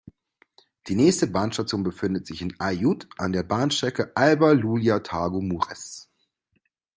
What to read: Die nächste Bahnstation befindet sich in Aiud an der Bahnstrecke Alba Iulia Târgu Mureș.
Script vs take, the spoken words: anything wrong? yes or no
no